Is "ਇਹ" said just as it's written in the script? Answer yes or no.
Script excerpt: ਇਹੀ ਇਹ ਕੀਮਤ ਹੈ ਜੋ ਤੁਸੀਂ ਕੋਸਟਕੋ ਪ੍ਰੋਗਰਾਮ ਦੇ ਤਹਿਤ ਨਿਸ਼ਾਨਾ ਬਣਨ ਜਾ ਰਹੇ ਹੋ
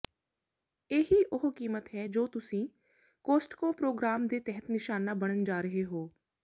no